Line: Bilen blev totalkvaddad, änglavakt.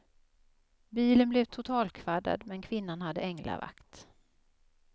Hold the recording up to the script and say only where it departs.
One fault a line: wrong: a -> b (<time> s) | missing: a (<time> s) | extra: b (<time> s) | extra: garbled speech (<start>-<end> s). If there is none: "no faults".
extra: men kvinnan hade (2.5 s)